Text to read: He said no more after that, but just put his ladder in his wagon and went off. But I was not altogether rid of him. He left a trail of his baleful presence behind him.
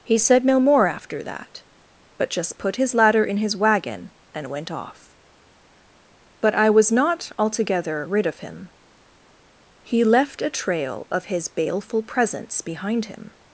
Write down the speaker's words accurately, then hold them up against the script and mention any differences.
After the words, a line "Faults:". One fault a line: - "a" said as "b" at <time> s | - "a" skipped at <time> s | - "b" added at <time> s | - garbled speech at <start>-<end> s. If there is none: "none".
He said no more after that, but just put his ladder in his wagon and went off. But I was not altogether rid of him. He left a trail of his baleful presence behind him.
Faults:
none